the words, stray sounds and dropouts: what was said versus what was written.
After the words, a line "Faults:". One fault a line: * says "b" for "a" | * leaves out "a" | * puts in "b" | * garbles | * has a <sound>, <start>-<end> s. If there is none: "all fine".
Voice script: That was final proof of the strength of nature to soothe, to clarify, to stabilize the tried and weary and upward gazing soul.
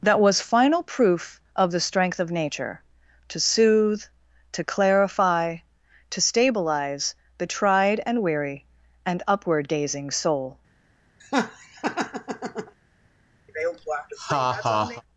That was final proof of the strength of nature to soothe, to clarify, to stabilize the tried and weary and upward gazing soul.
Faults:
* has a laugh, 11.2-12.7 s
* has a laugh, 13.5-15.0 s